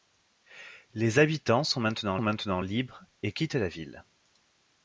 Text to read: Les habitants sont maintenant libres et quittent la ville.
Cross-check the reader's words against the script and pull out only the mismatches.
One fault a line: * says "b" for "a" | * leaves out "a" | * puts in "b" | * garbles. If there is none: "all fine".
* puts in "maintenant"